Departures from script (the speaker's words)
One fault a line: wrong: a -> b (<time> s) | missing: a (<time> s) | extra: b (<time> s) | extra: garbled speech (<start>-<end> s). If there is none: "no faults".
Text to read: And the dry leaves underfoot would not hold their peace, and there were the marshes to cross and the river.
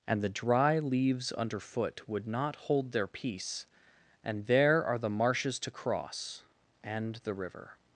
wrong: were -> are (4.8 s)